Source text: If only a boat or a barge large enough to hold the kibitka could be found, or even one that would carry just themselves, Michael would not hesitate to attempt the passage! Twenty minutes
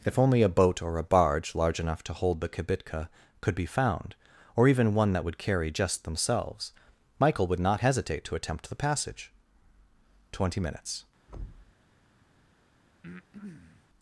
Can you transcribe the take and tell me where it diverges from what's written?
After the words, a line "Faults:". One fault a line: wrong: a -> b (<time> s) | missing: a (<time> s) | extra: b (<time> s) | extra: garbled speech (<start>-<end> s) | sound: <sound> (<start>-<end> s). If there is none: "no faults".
If only a boat or a barge large enough to hold the kibitka could be found, or even one that would carry just themselves, Michael would not hesitate to attempt the passage! Twenty minutes
Faults:
sound: thud (11.3-11.7 s)
sound: breath (13.0-13.9 s)